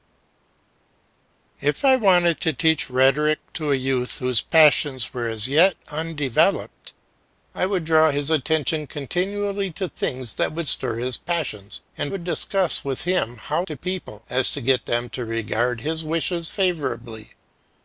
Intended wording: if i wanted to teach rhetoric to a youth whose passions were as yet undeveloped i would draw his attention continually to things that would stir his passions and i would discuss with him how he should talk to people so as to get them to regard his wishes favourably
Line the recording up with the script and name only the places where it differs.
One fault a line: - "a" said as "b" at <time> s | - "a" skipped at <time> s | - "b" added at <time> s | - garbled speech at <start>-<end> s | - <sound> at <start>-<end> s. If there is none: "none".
- "i" skipped at 12.1 s
- "he should talk" skipped at 13.7 s